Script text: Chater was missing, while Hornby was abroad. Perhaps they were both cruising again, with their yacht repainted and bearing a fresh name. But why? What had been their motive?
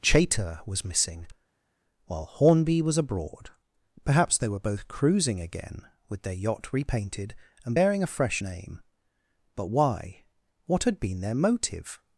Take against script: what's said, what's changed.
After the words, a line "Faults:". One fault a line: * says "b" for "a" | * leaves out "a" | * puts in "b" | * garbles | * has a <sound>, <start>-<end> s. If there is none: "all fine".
Chater was missing, while Hornby was abroad. Perhaps they were both cruising again, with their yacht repainted and bearing a fresh name. But why? What had been their motive?
Faults:
all fine